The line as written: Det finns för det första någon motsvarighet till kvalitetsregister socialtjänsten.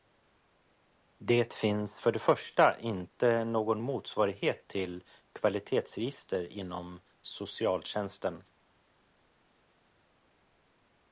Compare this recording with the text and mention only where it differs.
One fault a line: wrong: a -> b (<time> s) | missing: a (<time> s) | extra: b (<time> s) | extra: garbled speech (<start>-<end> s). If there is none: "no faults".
extra: inte (2.8 s)
extra: inom (6.5 s)